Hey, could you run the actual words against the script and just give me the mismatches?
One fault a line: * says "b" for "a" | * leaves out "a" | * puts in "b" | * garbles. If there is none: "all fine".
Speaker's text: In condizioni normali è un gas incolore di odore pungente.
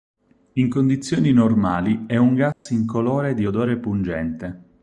all fine